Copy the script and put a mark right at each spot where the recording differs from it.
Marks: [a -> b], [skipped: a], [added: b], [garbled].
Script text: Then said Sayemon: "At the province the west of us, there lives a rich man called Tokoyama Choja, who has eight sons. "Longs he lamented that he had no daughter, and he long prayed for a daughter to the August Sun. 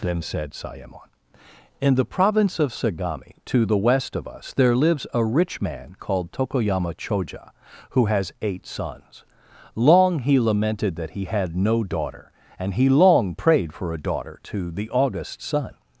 Then said Sayemon: ["At -> In] the province [added: of Sagami to] the west of us, there lives a rich man called Tokoyama Choja, who has eight sons. ["Longs -> Long] he lamented that he had no daughter, and he long prayed for a daughter to the August Sun.